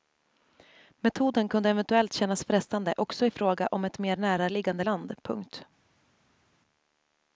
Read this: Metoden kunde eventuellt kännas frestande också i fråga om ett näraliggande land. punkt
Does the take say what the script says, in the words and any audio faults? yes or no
no